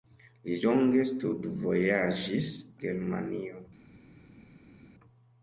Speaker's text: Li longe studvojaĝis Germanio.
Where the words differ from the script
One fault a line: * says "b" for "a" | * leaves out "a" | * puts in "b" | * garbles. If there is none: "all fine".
all fine